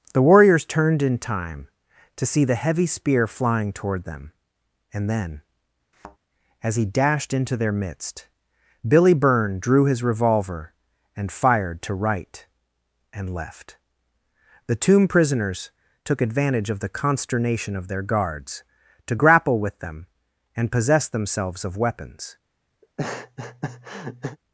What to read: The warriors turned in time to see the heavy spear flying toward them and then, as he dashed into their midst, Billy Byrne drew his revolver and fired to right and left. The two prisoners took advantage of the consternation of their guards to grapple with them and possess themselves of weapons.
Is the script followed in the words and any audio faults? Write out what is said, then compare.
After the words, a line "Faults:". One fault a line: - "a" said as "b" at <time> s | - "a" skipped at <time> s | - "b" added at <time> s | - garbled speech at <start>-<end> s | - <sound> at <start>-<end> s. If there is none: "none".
The warriors turned in time to see the heavy spear flying toward them and then, as he dashed into their midst, Billy Byrne drew his revolver and fired to right and left. The tomb prisoners took advantage of the consternation of their guards to grapple with them and possess themselves of weapons.
Faults:
- thud at 5.9-6.2 s
- "two" said as "tomb" at 14.8 s
- laugh at 22.8-24.4 s